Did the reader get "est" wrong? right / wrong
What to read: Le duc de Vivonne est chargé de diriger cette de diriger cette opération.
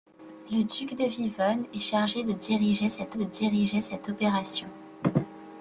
right